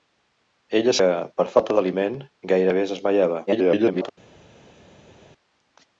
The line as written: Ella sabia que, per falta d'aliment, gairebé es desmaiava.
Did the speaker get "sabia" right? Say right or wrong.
wrong